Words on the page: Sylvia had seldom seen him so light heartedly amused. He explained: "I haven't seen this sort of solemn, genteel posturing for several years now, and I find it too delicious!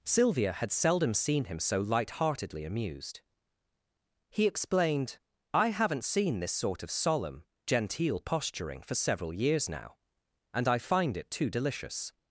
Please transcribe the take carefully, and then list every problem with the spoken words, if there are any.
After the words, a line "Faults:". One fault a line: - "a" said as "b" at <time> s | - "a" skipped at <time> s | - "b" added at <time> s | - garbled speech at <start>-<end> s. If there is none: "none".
Sylvia had seldom seen him so light heartedly amused. He explained: "I haven't seen this sort of solemn, genteel posturing for several years now, and I find it too delicious!
Faults:
none